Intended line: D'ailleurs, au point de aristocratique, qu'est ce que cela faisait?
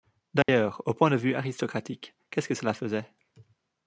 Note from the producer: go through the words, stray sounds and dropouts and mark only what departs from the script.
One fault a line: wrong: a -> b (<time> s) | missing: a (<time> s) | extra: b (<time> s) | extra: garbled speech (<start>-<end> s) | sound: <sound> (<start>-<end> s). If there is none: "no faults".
sound: dropout (0.4-0.5 s)
extra: vue (1.1 s)